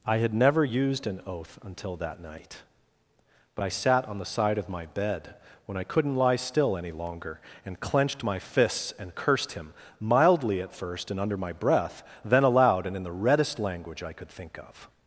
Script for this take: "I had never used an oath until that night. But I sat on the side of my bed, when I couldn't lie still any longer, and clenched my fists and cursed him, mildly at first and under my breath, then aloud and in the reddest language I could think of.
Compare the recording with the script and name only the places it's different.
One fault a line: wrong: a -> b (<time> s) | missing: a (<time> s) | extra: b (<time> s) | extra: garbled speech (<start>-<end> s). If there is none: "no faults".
no faults